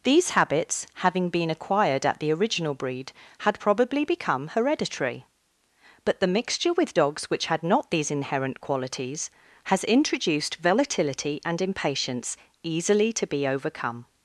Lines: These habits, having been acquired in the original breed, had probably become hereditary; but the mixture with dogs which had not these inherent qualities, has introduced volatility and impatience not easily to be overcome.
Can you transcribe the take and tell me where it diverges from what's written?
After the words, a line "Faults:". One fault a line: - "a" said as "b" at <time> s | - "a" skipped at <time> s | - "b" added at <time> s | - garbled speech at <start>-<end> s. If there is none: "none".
These habits, having been acquired at the original breed, had probably become hereditary; but the mixture with dogs which had not these inherent qualities, has introduced volatility and impatience easily to be overcome.
Faults:
- "in" said as "at" at 2.0 s
- "not" skipped at 12.4 s